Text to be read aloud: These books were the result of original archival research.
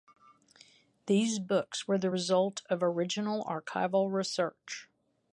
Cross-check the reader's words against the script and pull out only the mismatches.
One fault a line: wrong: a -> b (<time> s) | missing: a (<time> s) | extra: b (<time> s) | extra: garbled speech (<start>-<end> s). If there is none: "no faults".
no faults